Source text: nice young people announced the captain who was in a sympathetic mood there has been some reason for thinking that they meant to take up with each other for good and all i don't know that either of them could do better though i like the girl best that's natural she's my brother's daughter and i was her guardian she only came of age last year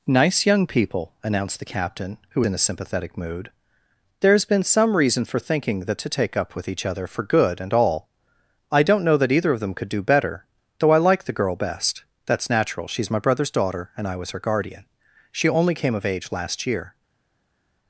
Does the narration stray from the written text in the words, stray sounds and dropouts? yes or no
yes